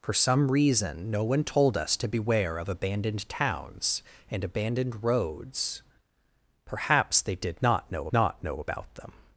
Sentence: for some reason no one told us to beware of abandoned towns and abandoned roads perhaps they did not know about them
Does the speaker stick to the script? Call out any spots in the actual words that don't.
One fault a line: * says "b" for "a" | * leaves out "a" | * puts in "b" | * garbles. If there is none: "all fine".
* puts in "not know"